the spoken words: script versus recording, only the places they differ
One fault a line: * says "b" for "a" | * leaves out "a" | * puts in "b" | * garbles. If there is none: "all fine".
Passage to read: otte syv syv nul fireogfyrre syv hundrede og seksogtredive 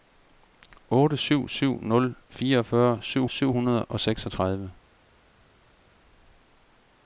* puts in "syv"